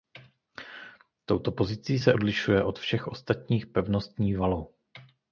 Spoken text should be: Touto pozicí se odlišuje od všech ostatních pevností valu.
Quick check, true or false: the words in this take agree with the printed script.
true